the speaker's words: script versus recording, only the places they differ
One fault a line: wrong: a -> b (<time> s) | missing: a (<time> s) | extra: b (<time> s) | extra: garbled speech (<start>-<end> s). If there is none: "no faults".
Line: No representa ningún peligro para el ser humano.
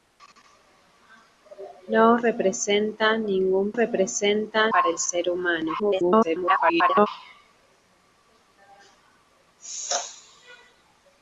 wrong: peligro -> representa (3.7 s)
extra: garbled speech (5.8-7.1 s)